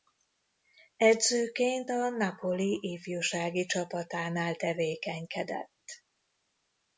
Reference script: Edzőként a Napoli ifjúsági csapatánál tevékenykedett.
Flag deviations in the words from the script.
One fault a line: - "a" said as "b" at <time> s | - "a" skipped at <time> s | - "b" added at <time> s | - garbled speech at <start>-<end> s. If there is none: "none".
none